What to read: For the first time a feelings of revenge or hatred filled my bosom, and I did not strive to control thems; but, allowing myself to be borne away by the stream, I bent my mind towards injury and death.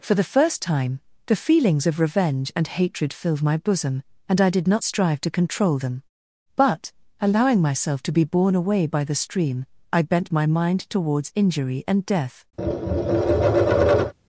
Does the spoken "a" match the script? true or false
false